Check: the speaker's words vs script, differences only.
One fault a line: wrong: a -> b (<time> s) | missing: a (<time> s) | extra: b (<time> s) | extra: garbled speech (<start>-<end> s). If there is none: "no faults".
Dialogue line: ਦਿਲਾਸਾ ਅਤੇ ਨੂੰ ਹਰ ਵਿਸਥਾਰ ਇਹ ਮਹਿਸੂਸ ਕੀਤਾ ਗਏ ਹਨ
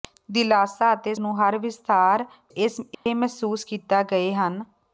no faults